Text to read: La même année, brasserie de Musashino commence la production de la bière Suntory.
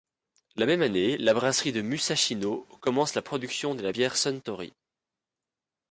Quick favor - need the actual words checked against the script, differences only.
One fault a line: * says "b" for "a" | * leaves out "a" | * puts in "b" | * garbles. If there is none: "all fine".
* puts in "la"